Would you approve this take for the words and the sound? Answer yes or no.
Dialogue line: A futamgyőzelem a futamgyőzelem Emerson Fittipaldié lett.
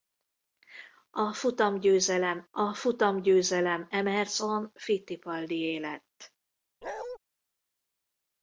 no